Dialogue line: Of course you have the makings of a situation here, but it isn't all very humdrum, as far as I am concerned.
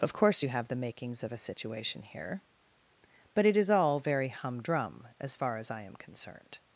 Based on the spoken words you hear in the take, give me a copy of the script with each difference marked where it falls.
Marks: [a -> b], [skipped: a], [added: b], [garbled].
Of course you have the makings of a situation here, but it [isn't -> is] all very humdrum, as far as I am concerned.